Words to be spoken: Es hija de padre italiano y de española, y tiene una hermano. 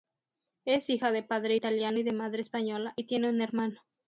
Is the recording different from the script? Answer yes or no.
yes